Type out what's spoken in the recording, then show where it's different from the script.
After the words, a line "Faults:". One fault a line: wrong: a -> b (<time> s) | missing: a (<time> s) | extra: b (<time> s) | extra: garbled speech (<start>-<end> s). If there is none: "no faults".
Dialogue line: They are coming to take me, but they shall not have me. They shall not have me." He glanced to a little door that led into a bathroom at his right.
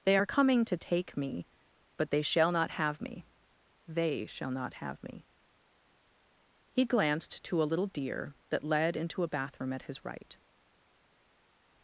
They are coming to take me, but they shall not have me. They shall not have me." He glanced to a little deer that led into a bathroom at his right.
Faults:
wrong: door -> deer (7.9 s)